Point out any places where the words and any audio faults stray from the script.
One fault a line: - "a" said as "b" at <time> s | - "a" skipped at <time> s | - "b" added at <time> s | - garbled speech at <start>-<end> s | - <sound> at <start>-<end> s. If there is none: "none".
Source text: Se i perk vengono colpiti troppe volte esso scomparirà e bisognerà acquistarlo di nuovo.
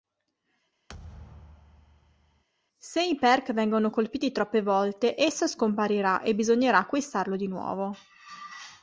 - thud at 0.9-2.4 s